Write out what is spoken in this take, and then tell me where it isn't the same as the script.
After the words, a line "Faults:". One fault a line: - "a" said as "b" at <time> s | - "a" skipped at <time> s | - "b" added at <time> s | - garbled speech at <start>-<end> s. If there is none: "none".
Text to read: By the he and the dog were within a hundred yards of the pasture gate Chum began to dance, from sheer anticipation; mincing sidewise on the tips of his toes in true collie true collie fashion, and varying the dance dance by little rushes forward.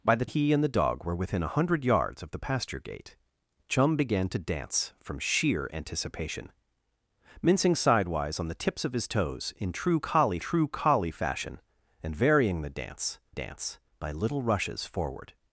By the he and the dog were within a hundred yards of the pasture gate Chum began to dance, from sheer anticipation; mincing sidewise on the tips of his toes in true collie true collie fashion, and varying the dance dance by little rushes forward.
Faults:
none